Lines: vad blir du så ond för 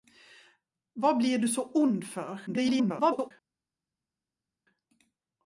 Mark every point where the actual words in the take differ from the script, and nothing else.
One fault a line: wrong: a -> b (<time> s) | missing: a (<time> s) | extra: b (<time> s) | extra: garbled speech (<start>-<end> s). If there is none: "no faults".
extra: garbled speech (2.5-3.3 s)